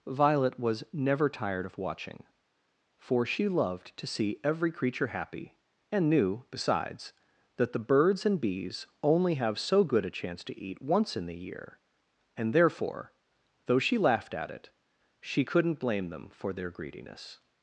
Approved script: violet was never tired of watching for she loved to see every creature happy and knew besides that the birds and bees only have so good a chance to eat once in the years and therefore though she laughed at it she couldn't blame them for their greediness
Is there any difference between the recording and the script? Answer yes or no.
yes